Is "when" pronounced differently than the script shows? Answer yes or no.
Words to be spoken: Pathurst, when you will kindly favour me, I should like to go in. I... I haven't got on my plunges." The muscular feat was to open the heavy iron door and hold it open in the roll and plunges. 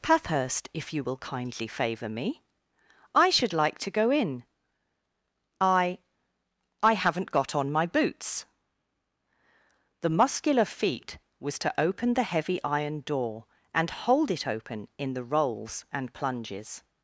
yes